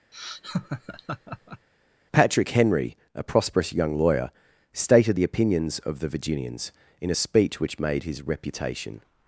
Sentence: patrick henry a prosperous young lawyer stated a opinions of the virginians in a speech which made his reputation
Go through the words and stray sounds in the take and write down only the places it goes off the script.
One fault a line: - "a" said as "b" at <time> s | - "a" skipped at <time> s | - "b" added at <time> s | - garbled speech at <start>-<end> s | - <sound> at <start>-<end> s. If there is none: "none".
- laugh at 0.1-1.7 s
- "a" said as "the" at 5.1 s